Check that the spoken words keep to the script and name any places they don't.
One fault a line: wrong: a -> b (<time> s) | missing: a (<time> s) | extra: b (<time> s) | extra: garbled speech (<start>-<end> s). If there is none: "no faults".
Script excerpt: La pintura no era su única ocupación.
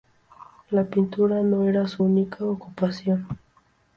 no faults